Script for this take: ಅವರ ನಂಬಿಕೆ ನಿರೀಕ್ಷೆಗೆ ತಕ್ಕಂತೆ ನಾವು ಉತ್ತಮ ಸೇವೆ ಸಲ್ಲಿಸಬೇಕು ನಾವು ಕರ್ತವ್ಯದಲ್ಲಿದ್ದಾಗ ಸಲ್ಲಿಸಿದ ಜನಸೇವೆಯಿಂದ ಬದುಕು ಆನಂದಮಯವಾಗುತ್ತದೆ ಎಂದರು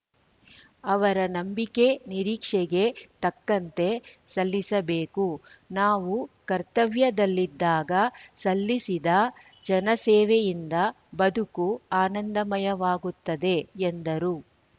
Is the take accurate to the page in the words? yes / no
no